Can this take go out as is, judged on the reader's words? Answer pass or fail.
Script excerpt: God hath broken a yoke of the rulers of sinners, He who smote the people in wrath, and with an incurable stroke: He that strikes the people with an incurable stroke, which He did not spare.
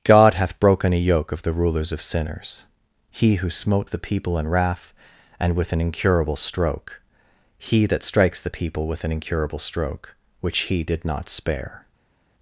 pass